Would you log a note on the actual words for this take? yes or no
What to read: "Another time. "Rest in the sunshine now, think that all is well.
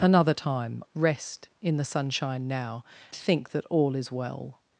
no